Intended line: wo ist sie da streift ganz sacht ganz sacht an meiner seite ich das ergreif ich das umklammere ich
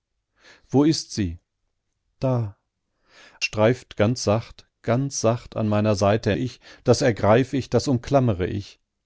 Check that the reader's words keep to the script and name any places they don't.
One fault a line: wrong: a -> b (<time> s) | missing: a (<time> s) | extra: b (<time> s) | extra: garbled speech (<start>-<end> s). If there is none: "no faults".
no faults